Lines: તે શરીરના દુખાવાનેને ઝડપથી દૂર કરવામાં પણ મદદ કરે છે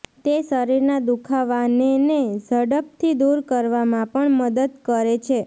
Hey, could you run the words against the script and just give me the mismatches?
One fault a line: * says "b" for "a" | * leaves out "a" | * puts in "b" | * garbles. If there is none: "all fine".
all fine